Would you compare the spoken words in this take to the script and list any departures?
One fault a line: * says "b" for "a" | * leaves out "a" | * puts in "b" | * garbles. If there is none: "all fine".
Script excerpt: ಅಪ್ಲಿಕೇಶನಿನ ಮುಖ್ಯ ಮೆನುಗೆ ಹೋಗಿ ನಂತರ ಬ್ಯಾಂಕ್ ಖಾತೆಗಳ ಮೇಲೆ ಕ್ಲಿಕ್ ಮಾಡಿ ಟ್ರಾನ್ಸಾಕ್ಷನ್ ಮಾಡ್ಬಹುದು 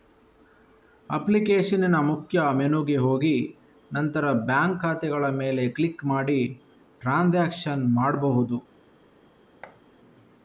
all fine